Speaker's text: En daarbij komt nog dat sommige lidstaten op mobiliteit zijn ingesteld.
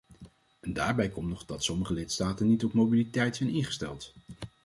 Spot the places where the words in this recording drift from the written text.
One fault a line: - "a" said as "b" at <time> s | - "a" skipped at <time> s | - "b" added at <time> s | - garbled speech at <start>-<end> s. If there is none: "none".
- "niet" added at 2.5 s